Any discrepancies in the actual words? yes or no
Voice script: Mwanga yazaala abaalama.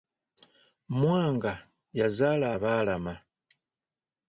no